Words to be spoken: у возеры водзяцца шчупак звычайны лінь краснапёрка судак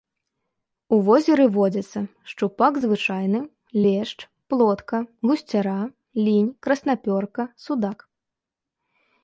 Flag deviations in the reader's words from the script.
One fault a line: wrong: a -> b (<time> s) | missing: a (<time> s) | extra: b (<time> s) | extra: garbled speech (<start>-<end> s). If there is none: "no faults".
extra: лешч плотка гусцяра (3.8 s)